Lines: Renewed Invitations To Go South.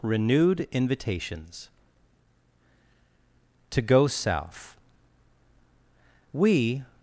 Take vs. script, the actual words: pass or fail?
fail